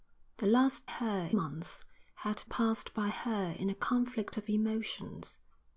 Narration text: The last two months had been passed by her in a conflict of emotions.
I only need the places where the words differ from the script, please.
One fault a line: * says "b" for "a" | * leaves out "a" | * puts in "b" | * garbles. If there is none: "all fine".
* says "her" for "two"
* leaves out "been"